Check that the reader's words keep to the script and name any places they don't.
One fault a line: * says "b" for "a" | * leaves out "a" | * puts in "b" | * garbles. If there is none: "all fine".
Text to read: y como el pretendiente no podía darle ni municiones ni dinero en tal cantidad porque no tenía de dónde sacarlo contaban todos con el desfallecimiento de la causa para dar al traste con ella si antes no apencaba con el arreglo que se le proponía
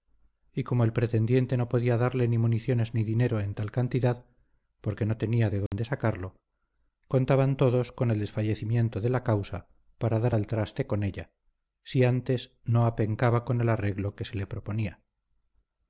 all fine